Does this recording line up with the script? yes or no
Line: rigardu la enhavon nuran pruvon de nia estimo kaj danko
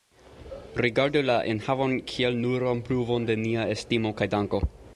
no